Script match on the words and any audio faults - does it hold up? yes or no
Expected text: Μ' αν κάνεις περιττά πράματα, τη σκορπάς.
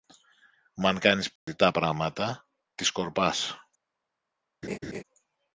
no